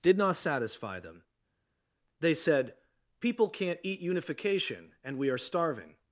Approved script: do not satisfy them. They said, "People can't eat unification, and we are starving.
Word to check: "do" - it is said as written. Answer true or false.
false